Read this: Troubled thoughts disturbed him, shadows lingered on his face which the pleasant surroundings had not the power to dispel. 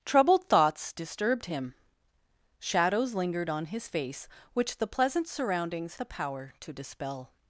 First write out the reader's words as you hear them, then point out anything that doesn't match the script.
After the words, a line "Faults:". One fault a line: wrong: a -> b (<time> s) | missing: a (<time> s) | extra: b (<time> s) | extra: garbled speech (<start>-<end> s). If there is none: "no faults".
Troubled thoughts disturbed him, shadows lingered on his face which the pleasant surroundings the power to dispel.
Faults:
missing: had not (6.0 s)